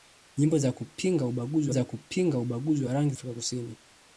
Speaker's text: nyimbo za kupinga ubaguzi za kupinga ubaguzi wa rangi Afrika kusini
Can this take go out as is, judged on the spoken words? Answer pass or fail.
pass